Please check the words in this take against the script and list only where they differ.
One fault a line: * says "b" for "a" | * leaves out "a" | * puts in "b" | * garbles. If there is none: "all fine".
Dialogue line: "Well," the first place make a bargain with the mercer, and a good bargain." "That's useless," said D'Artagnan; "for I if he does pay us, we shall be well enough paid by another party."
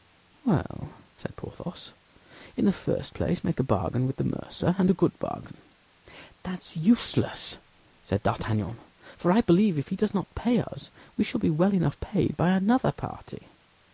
* puts in "said Porthos in"
* puts in "believe"
* puts in "not"